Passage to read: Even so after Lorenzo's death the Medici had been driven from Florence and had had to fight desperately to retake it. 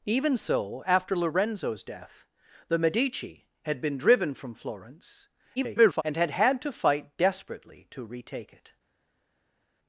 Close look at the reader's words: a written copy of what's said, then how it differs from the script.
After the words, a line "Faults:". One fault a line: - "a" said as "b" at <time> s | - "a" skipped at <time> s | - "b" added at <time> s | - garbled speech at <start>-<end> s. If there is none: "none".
Even so after Lorenzo's death the Medici had been driven from Florence [garbled] and had had to fight desperately to retake it.
Faults:
- garbled speech at 5.6-6.0 s